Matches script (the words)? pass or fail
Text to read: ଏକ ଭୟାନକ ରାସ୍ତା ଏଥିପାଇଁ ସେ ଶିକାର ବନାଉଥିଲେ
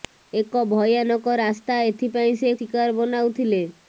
pass